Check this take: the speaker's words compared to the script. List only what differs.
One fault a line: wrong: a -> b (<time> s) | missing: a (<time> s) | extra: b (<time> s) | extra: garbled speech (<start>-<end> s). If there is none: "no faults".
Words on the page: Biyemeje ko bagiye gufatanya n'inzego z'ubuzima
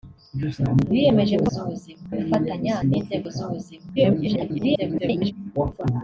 wrong: bagiye -> z'ubuzima (1.5 s)
extra: garbled speech (4.0-5.3 s)